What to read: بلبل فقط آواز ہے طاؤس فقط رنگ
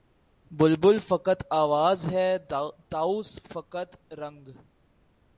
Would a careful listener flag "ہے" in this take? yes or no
no